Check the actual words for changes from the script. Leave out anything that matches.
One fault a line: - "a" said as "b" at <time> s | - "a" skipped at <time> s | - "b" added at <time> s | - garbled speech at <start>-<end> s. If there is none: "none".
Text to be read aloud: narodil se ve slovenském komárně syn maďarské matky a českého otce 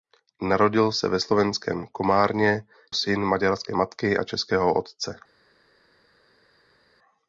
none